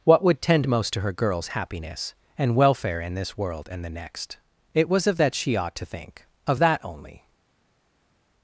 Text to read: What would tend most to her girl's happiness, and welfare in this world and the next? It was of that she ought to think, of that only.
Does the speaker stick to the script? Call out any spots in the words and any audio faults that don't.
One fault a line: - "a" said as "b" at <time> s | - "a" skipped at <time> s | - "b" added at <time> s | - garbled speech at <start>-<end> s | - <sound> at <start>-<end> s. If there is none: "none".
none